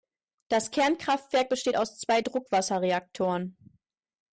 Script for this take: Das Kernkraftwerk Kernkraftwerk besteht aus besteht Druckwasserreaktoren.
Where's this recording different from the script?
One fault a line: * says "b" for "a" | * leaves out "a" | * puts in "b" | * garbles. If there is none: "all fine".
* leaves out "Kernkraftwerk"
* says "zwei" for "besteht"